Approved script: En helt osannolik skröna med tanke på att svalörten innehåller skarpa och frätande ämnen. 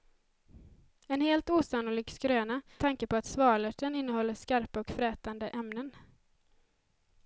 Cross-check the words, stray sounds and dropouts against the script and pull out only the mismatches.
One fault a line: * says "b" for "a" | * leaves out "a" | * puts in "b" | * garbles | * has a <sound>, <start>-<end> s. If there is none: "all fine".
* leaves out "med"